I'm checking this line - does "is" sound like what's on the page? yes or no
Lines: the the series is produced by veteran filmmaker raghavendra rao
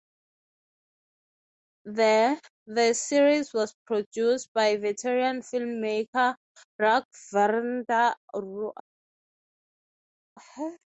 no